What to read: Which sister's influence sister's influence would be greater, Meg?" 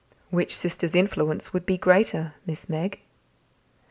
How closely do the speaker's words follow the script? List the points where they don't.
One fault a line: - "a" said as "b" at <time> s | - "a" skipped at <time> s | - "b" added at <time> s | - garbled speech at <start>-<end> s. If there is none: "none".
- "sister's influence" skipped at 1.5 s
- "Miss" added at 2.5 s